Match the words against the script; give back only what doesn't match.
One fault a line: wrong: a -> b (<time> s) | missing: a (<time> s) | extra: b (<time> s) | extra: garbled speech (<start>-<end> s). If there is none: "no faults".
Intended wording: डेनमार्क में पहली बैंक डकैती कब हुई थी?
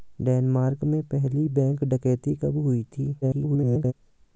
extra: garbled speech (3.2-3.9 s)